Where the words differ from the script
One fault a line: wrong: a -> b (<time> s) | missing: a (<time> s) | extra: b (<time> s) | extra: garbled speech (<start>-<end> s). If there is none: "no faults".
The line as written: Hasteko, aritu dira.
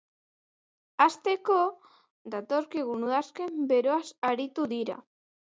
extra: datorkigun udazken beroaz (2.4 s)